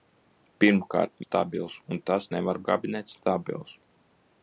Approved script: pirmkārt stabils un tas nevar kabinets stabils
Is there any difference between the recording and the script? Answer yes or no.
no